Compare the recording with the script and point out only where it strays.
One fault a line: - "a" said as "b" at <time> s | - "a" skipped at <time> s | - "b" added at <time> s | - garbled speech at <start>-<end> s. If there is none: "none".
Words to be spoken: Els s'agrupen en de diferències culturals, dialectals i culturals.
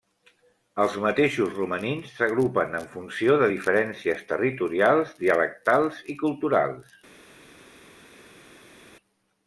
- "mateixos romanins" added at 1.0 s
- "funció" added at 3.0 s
- "culturals" said as "territorials" at 4.3 s